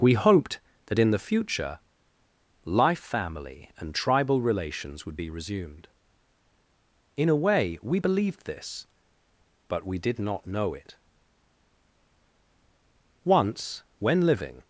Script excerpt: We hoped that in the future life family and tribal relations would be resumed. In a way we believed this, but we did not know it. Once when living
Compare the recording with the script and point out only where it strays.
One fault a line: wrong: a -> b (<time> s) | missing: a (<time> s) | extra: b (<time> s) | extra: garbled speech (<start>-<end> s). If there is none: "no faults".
no faults